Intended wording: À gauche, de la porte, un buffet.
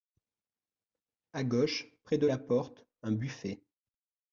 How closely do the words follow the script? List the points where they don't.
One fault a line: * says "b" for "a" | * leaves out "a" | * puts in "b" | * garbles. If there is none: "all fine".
* puts in "près"